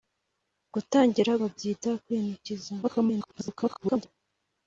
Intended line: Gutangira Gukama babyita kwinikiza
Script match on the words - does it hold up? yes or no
no